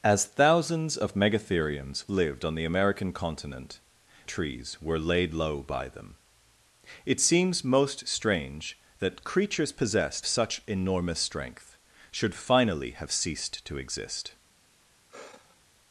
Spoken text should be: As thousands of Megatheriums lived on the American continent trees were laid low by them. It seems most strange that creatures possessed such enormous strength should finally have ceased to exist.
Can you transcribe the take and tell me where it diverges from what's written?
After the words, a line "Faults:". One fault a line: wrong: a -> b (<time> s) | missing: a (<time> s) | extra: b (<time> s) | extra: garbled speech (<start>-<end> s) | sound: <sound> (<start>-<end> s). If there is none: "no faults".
As thousands of Megatheriums lived on the American continent trees were laid low by them. It seems most strange that creatures possessed such enormous strength should finally have ceased to exist.
Faults:
sound: sigh (15.1-15.6 s)